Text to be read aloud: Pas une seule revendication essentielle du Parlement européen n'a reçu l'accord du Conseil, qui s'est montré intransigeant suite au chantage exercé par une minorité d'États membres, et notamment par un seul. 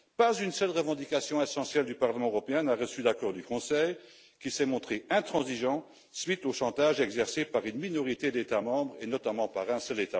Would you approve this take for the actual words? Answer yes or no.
yes